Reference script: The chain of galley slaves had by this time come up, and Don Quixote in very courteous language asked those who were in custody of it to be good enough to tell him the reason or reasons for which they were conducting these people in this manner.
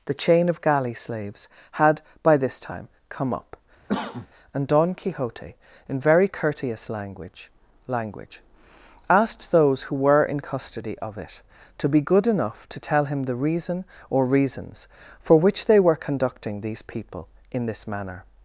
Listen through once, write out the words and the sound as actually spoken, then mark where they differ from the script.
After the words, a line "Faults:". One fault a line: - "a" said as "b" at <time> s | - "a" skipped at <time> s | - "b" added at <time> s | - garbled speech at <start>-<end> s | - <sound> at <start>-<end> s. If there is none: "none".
The chain of galley slaves had by this time come up, and Don Quixote in very courteous language language asked those who were in custody of it to be good enough to tell him the reason or reasons for which they were conducting these people in this manner.
Faults:
- cough at 3.9-4.3 s
- "language" added at 7.9 s